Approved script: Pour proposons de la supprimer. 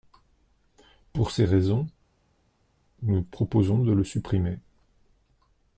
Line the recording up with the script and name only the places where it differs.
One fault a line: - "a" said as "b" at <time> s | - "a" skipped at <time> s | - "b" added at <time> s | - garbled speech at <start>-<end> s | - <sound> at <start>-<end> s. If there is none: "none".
- "ces raisons nous" added at 1.3 s
- "la" said as "le" at 3.9 s